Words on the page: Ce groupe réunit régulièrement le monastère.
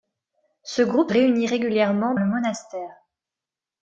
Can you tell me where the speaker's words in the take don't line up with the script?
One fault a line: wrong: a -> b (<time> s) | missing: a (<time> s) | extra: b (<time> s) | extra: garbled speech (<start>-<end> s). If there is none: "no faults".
no faults